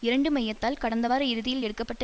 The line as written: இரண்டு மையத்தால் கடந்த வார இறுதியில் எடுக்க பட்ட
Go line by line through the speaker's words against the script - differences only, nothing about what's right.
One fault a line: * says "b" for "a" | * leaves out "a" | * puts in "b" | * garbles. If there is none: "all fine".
all fine